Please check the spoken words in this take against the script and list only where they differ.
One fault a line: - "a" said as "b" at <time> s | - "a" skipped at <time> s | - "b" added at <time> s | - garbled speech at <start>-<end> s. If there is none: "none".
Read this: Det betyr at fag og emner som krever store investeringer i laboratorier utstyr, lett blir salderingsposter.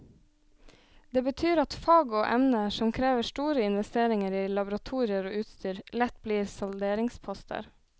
- "og" added at 5.3 s